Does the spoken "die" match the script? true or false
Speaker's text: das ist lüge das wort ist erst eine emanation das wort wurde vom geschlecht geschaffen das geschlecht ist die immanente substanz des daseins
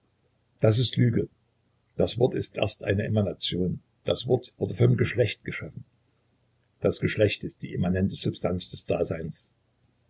true